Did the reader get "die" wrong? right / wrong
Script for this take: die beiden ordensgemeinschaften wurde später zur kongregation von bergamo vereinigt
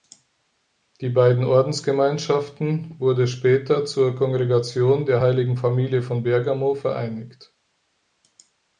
right